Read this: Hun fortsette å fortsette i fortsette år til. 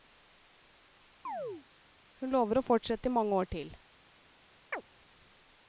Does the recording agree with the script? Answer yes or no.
no